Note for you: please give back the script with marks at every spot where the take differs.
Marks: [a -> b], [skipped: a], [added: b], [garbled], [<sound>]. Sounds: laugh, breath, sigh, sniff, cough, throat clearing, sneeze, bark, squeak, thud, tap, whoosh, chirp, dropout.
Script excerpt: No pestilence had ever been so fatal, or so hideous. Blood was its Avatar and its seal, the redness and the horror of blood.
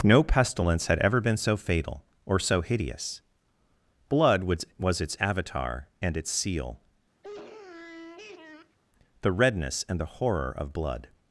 No pestilence had ever been so fatal, or so hideous. Blood was [added: was] its Avatar and its seal, [sniff] the redness and the horror of blood.